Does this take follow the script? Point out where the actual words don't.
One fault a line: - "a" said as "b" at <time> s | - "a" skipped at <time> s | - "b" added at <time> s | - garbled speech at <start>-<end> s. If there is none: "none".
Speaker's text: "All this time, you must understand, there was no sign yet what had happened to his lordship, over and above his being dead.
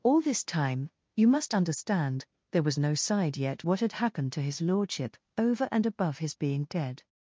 - "sign" said as "side" at 2.9 s